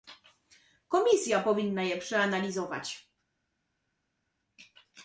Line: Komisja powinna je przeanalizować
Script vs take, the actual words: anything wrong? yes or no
no